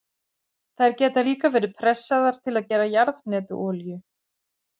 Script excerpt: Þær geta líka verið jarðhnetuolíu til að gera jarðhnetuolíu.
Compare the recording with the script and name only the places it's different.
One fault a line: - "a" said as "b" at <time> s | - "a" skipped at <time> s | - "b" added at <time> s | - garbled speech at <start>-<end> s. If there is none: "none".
- "jarðhnetuolíu" said as "pressaðar" at 1.8 s